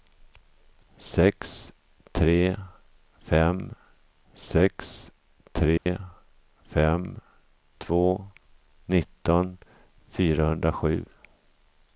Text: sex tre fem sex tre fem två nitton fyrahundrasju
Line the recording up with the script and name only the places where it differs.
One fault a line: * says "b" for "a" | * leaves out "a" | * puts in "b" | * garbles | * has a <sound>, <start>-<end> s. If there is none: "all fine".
* has a dropout, 5.8-5.9 s